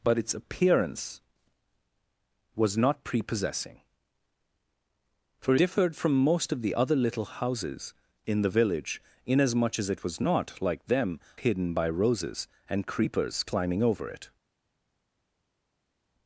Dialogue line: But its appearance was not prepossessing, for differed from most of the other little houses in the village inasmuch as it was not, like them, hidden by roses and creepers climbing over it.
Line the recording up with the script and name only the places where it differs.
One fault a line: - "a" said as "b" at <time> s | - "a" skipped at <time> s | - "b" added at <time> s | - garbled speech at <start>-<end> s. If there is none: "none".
none